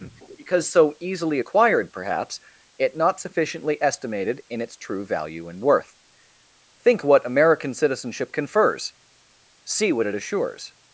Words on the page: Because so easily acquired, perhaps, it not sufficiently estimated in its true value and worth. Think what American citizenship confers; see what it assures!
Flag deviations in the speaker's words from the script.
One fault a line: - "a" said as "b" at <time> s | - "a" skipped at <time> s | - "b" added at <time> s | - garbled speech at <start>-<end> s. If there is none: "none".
none